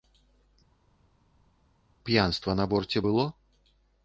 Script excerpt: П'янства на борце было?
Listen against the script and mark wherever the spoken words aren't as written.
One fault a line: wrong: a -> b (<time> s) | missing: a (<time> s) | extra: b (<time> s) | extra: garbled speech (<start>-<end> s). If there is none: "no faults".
no faults